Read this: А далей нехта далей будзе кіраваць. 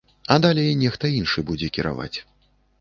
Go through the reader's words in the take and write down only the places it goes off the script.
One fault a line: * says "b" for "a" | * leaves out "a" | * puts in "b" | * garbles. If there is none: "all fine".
* says "іншы" for "далей"